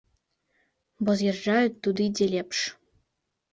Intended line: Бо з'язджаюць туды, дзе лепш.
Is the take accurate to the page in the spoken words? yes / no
yes